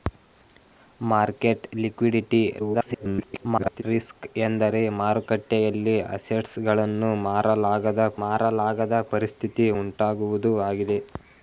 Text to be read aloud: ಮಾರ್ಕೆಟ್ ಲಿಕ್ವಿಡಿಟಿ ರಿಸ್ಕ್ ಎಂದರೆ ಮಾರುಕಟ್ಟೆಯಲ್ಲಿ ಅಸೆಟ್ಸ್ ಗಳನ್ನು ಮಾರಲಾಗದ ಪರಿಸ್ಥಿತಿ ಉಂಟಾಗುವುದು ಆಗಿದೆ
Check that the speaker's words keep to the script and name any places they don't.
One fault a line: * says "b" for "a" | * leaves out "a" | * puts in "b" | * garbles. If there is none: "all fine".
* garbles
* puts in "ಮಾರಲಾಗದ"